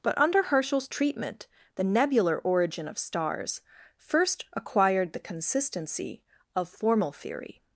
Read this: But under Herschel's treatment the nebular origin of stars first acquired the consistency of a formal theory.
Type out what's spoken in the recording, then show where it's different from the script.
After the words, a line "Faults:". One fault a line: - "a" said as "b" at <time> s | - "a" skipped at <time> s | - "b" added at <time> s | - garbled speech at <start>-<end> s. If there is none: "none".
But under Herschel's treatment the nebular origin of stars first acquired the consistency of formal theory.
Faults:
- "a" skipped at 6.7 s